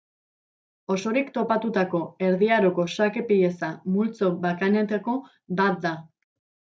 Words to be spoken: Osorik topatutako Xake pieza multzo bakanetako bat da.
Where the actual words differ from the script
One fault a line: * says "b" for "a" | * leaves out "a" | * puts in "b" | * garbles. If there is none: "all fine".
* puts in "Erdi Aroko"